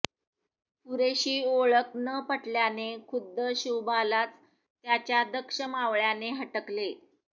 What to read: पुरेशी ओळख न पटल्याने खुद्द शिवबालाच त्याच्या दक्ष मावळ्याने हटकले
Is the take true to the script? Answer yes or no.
yes